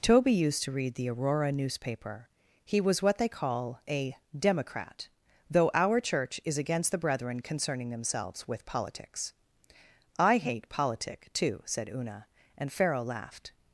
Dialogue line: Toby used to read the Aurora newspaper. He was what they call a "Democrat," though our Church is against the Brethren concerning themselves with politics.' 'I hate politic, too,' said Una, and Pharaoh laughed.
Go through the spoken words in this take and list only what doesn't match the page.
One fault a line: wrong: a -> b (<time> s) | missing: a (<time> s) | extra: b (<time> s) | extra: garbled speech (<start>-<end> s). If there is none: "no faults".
no faults